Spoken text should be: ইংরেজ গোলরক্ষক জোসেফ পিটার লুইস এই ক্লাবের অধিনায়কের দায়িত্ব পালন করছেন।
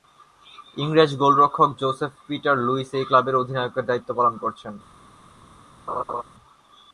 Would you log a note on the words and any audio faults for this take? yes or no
yes